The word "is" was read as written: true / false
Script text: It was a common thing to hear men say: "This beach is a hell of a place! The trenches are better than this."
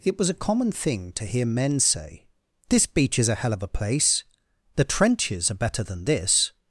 true